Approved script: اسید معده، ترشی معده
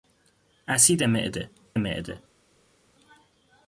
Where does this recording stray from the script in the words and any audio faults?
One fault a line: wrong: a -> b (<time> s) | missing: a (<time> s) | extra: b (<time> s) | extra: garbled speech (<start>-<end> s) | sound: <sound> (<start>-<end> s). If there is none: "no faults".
missing: ترشی (1.5 s)